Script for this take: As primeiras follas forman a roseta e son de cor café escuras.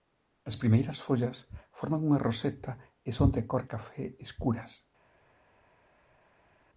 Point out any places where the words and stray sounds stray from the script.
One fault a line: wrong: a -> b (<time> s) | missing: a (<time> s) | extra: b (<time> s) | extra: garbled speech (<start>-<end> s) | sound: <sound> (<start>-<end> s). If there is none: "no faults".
wrong: a -> unha (2.1 s)